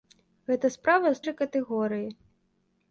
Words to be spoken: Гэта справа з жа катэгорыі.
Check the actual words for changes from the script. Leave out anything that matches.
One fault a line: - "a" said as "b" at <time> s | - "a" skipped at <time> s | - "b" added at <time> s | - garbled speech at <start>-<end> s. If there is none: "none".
none